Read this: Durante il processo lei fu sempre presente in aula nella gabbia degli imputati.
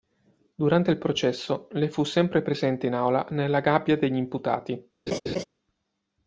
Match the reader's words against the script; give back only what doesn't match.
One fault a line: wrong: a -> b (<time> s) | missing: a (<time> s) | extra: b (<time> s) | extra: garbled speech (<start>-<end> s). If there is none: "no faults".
no faults